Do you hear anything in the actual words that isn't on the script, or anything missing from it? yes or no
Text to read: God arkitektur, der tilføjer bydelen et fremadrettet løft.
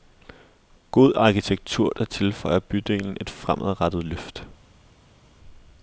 no